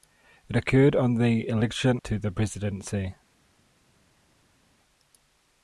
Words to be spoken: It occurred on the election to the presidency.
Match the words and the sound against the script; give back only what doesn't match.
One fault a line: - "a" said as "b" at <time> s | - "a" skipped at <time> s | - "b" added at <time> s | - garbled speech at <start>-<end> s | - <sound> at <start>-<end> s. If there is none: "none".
none